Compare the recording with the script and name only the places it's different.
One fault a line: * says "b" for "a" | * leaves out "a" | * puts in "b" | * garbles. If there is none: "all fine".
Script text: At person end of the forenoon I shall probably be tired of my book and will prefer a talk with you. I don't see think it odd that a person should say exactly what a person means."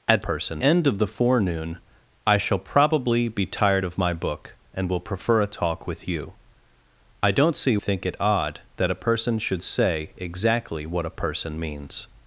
all fine